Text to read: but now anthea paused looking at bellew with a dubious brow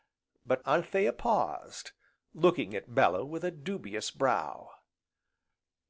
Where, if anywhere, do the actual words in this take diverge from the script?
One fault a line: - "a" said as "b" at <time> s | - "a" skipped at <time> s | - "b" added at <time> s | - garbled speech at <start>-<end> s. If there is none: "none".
- "now" skipped at 0.6 s